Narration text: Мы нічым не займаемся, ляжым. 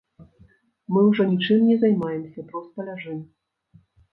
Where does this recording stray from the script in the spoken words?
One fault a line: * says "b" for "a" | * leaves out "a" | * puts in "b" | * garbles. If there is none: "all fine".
* puts in "ўжо"
* puts in "проста"